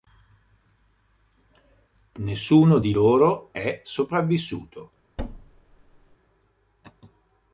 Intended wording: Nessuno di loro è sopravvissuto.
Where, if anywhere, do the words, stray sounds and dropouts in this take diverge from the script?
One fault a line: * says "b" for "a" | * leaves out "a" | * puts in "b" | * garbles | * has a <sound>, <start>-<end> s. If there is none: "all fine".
* has a thud, 5.2-6.2 s